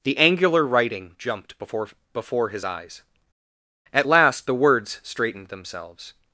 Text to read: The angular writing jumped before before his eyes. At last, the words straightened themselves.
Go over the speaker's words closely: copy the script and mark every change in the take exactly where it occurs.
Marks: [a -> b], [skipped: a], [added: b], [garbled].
The angular writing jumped before before his eyes. At last, the words straightened themselves.